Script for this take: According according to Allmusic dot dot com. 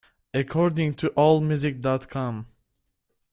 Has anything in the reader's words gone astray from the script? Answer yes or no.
yes